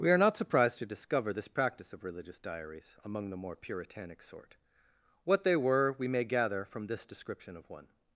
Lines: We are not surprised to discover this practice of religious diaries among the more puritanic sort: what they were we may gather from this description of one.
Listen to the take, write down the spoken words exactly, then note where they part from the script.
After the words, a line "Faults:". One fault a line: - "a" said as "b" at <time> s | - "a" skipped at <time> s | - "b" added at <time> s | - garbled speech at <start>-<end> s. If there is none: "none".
We are not surprised to discover this practice of religious diaries among the more puritanic sort: what they were we may gather from this description of one.
Faults:
none